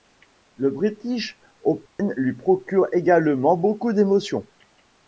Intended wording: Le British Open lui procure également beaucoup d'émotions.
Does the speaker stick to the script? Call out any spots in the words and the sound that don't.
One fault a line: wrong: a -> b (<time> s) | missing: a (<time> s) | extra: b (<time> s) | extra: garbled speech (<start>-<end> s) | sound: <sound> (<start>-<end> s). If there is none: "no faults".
sound: dropout (1.9-2.0 s)